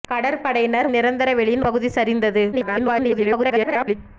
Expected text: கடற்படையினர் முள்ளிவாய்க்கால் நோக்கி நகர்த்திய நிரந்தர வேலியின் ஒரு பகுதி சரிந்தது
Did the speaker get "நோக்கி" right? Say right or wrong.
wrong